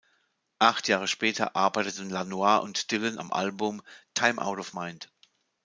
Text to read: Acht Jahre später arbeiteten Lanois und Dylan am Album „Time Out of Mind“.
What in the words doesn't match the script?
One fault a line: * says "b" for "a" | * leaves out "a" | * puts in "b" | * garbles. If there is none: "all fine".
all fine